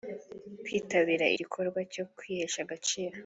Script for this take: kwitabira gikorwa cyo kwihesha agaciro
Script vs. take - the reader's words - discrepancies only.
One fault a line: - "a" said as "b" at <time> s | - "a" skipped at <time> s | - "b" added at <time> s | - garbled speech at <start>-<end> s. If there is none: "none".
none